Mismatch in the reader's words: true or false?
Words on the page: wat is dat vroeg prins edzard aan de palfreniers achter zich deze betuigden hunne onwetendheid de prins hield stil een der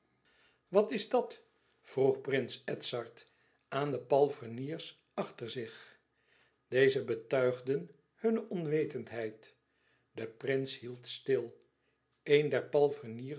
false